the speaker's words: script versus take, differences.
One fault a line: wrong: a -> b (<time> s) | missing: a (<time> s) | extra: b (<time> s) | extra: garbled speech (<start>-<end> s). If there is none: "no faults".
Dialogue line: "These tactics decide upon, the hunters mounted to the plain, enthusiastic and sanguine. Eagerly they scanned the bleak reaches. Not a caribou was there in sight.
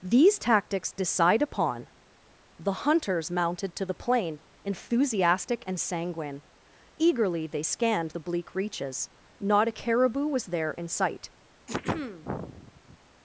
no faults